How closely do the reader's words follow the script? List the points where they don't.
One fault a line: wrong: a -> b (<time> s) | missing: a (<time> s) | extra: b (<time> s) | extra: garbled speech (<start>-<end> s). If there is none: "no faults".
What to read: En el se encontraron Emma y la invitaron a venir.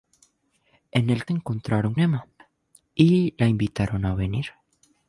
no faults